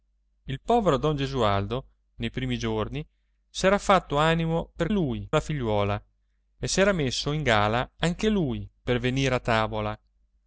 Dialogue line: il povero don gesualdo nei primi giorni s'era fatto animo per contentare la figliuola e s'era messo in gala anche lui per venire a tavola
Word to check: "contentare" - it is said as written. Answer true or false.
false